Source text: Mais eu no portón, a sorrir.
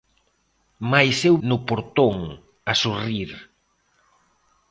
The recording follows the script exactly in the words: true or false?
true